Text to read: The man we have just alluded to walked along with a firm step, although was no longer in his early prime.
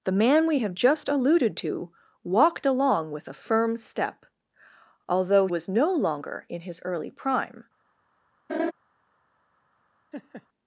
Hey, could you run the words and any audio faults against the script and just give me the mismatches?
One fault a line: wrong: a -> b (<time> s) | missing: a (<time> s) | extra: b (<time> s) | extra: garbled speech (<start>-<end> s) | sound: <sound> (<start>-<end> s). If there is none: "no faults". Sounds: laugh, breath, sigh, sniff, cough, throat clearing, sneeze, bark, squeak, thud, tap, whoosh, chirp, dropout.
sound: laugh (8.5-8.7 s)
sound: laugh (10.1-10.5 s)